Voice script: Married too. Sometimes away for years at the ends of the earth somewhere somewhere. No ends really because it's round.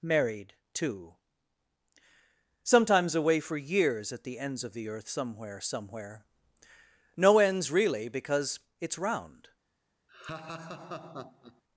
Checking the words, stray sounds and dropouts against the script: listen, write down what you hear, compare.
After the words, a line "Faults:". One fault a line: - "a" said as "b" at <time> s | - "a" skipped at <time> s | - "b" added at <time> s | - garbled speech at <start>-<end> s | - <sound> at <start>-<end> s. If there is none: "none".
Married too. Sometimes away for years at the ends of the earth somewhere somewhere. No ends really because it's round.
Faults:
- laugh at 10.1-11.6 s